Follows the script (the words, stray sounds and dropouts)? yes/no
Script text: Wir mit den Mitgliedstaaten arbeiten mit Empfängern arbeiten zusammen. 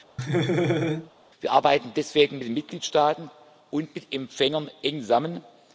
no